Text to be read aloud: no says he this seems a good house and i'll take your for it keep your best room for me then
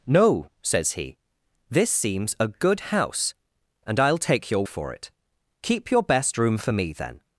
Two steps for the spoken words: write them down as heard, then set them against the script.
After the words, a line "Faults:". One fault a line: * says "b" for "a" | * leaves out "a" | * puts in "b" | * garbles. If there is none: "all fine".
no says he this seems a good house and i'll take your for it keep your best room for me then
Faults:
all fine